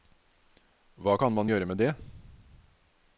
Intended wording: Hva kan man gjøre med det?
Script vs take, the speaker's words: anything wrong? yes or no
no